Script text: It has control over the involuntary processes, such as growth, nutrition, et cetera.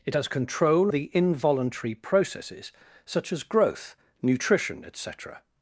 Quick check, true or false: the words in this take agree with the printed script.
false